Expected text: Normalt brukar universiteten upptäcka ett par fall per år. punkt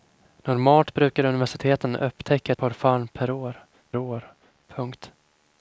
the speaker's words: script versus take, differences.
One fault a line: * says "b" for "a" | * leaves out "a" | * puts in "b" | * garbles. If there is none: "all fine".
* leaves out "ett"
* puts in "år"